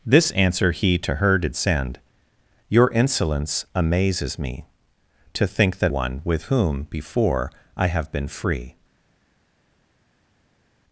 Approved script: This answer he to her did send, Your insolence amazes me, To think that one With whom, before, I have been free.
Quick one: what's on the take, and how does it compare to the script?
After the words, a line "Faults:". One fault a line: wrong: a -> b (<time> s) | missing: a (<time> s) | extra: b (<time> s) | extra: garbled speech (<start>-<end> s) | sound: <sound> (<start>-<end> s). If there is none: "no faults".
This answer he to her did send, Your insolence amazes me, To think that one With whom, before, I have been free.
Faults:
no faults